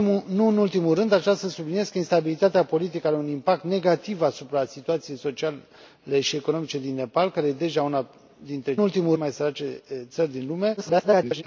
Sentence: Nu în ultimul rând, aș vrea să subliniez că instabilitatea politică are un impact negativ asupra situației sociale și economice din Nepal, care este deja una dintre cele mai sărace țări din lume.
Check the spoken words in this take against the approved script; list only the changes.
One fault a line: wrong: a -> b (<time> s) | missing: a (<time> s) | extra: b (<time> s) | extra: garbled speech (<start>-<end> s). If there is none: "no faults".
wrong: cele -> ultimul (8.8 s)
extra: garbled speech (10.8-11.4 s)